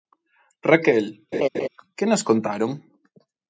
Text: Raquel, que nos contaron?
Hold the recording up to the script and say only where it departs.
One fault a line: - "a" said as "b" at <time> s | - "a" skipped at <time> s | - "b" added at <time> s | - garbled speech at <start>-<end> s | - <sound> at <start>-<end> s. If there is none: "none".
- laugh at 1.3-1.7 s